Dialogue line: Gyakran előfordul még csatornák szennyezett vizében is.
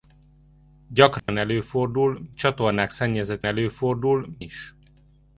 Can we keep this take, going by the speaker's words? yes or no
no